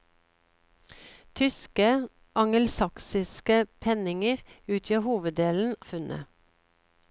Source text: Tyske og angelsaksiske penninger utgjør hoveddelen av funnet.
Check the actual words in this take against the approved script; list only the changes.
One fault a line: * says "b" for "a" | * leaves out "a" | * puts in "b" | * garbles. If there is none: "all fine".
* leaves out "og"
* leaves out "av"